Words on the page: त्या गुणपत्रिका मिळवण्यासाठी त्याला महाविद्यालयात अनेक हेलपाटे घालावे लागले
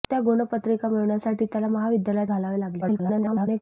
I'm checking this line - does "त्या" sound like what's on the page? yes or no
yes